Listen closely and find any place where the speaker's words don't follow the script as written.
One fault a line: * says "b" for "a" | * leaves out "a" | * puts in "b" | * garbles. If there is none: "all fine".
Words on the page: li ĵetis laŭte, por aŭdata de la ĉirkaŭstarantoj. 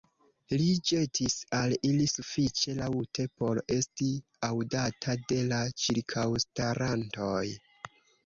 * puts in "al ili sufiĉe"
* puts in "esti"